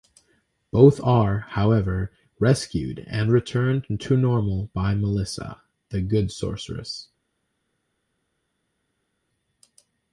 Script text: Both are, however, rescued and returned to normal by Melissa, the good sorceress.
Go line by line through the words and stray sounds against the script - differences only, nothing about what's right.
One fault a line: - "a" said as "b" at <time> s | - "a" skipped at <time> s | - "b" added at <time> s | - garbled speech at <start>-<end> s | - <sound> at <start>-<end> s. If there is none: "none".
none